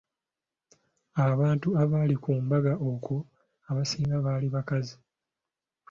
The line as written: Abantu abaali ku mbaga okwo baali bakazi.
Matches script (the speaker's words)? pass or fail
fail